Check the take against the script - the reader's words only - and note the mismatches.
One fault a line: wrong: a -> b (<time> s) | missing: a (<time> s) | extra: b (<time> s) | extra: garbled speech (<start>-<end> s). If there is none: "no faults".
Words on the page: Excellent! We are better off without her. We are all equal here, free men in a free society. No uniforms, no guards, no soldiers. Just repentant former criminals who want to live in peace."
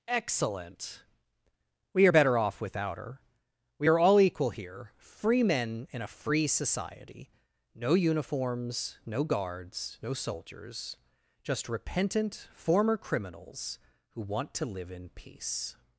no faults